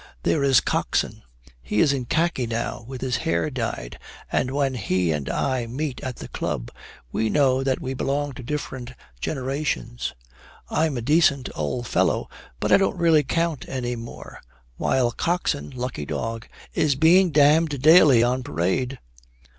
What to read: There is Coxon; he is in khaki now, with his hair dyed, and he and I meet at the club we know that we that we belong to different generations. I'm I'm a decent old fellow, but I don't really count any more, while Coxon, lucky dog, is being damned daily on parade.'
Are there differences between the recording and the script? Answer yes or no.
yes